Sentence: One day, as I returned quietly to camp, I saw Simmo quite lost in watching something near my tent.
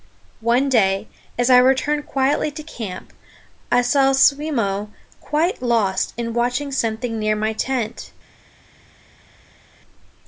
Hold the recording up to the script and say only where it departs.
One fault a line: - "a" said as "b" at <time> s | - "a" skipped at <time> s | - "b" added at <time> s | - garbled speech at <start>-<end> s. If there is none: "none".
none